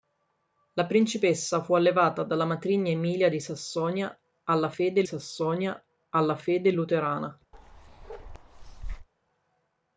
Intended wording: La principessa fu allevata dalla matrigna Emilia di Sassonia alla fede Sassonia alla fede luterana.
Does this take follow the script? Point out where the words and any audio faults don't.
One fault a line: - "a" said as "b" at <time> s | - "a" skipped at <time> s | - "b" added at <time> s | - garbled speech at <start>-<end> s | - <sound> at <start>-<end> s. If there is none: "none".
- bark at 7.5-9.1 s